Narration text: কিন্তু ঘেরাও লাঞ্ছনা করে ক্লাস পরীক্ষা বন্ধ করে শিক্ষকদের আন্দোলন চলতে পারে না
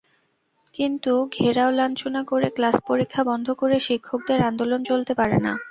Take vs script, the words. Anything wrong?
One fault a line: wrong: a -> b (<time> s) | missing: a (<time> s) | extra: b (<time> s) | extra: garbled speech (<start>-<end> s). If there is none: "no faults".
no faults